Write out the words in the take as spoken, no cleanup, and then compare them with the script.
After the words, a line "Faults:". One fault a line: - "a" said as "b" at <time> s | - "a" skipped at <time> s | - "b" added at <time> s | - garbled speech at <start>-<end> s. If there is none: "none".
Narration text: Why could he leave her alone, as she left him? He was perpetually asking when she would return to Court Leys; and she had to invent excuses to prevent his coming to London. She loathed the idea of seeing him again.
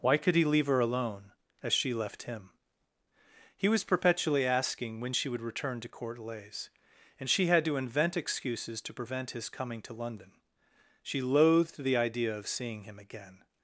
Why could he leave her alone, as she left him? He was perpetually asking when she would return to Court Leys; and she had to invent excuses to prevent his coming to London. She loathed the idea of seeing him again.
Faults:
none